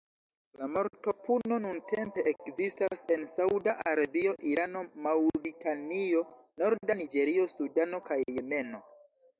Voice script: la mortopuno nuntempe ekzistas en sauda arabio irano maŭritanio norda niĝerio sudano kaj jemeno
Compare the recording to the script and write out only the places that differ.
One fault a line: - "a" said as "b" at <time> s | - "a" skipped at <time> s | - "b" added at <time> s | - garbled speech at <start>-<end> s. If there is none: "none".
none